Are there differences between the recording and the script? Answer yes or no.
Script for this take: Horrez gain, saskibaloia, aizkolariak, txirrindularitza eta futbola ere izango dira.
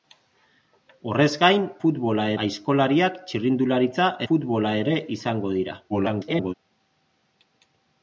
yes